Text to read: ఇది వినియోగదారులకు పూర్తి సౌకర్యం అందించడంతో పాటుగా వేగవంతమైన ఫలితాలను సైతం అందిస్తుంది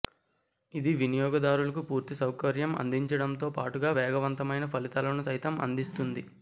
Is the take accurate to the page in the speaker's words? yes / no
yes